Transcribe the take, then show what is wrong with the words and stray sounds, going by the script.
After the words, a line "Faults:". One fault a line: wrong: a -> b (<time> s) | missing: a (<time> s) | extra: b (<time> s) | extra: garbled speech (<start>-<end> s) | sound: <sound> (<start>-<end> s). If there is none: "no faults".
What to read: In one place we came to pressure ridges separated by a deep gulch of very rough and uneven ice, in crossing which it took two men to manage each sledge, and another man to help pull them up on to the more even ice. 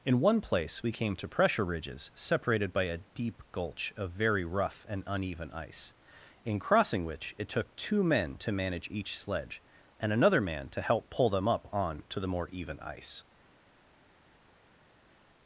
In one place we came to pressure ridges separated by a deep gulch of very rough and uneven ice, in crossing which it took two men to manage each sledge, and another man to help pull them up on to the more even ice.
Faults:
no faults